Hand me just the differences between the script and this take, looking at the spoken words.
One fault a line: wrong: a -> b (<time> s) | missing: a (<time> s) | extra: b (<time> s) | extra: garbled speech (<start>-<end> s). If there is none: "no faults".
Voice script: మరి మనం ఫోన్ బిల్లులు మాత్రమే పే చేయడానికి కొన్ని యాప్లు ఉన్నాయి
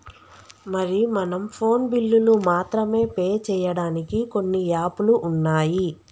no faults